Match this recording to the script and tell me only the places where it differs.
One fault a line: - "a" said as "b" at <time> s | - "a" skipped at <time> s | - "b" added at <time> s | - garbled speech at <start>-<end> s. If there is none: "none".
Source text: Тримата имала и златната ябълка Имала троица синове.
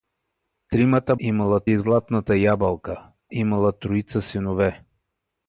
none